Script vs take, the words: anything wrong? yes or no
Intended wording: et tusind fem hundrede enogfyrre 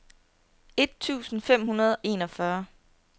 no